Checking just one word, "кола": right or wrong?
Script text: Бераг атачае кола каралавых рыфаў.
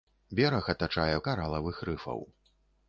wrong